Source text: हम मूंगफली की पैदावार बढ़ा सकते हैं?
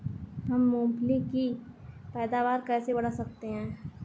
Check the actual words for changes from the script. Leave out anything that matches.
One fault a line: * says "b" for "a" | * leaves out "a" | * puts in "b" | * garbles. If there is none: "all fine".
* puts in "कैसे"